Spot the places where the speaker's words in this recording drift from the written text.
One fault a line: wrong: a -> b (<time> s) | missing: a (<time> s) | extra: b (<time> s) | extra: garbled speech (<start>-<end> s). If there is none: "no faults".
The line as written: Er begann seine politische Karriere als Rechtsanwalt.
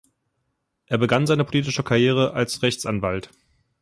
no faults